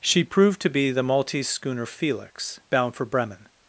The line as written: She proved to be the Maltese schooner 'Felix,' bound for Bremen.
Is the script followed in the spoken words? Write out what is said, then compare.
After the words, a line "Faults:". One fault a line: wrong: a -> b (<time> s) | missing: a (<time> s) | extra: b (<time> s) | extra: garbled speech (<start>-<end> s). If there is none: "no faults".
She proved to be the Maltese schooner 'Felix,' bound for Bremen.
Faults:
no faults